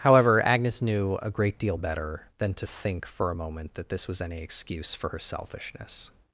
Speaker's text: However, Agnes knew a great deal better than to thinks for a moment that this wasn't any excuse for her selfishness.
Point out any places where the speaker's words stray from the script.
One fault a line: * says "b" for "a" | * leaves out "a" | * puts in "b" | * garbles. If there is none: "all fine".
* says "think" for "thinks"
* says "was" for "wasn't"